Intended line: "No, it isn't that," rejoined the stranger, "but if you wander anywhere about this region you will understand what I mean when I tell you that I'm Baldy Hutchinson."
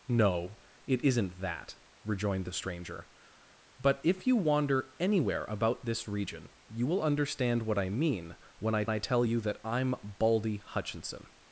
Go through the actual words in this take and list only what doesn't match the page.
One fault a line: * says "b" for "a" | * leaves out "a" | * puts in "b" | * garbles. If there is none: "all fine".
* puts in "I"